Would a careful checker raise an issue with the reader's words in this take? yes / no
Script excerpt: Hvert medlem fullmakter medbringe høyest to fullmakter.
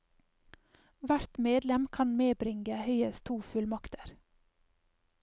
yes